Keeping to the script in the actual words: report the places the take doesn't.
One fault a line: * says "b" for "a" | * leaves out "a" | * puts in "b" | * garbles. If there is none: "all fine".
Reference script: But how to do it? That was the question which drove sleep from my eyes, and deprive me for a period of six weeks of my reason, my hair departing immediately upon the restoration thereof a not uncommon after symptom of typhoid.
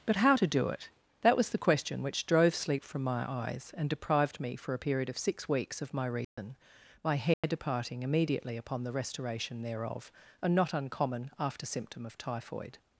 * says "deprived" for "deprive"